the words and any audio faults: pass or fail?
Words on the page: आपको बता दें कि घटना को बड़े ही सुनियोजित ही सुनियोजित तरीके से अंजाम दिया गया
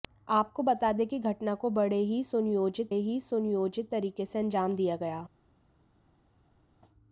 pass